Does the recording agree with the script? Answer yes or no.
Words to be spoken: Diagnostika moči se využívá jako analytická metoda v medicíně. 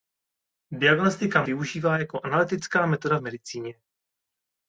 no